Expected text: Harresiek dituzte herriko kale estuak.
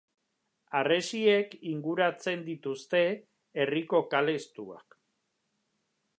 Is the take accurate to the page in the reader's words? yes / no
no